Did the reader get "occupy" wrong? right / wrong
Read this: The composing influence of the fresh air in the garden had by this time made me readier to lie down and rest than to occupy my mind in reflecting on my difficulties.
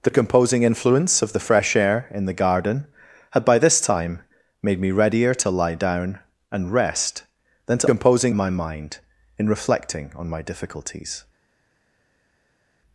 wrong